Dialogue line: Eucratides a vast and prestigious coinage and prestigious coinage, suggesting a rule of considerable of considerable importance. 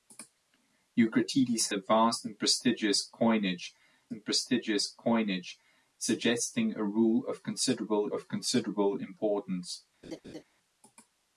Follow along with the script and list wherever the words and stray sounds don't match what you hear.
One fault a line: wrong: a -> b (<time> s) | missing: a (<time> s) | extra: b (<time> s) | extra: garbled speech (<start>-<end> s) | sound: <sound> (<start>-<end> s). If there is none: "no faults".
sound: laugh (10.0-10.4 s)